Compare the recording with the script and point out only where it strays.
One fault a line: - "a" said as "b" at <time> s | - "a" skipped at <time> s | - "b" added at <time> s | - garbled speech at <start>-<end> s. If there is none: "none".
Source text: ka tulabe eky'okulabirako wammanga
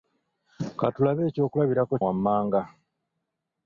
none